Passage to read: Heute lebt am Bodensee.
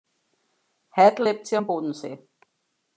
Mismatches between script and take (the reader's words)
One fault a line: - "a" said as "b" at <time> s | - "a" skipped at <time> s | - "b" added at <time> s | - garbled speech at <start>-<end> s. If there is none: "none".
- "sie" added at 1.5 s